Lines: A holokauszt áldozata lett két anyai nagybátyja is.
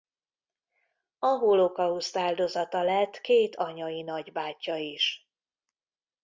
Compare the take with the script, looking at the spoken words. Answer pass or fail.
pass